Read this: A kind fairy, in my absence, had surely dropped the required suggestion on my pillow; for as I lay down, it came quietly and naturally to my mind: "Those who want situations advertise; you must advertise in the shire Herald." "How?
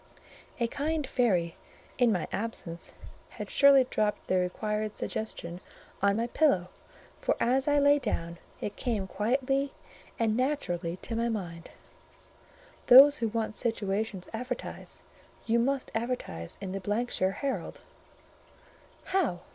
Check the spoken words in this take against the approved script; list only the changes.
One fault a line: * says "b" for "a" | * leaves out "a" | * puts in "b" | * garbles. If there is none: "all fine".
all fine